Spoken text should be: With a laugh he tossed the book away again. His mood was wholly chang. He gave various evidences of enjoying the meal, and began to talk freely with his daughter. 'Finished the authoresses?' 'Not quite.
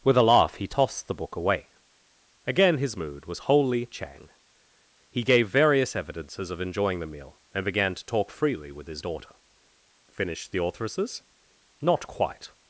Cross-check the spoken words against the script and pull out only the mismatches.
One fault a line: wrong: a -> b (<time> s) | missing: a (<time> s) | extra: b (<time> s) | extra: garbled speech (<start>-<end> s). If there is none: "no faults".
no faults